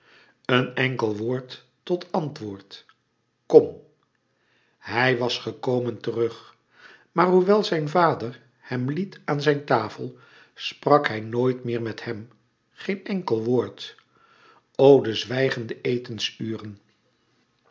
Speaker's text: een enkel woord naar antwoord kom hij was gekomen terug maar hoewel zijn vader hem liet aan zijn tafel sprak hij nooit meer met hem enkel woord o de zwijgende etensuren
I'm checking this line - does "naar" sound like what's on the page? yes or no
no